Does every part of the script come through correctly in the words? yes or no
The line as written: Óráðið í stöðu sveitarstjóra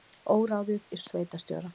no